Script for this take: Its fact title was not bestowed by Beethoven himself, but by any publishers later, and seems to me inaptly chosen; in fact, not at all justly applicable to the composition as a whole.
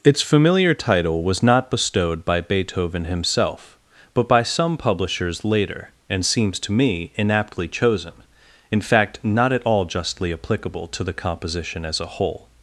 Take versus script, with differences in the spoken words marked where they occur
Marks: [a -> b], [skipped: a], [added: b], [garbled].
Its [fact -> familiar] title was not bestowed by Beethoven himself, but by [any -> some] publishers later, and seems to me inaptly chosen; in fact, not at all justly applicable to the composition as a whole.